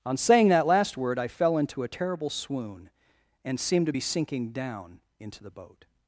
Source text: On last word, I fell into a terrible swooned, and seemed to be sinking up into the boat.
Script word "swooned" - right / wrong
wrong